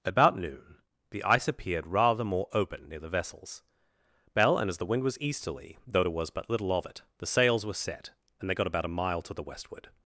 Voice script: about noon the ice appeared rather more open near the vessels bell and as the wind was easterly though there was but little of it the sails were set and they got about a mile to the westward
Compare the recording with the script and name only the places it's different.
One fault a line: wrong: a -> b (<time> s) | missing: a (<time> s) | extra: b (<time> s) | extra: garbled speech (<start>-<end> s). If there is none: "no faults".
no faults